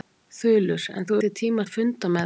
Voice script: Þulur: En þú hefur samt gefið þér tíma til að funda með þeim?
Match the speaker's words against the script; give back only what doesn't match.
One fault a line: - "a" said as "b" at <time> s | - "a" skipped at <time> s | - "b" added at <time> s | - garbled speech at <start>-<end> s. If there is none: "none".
- "hefur samt gefið" skipped at 1.2 s
- "til" skipped at 1.7 s